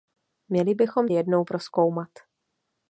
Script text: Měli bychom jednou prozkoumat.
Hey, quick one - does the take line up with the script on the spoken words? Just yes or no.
yes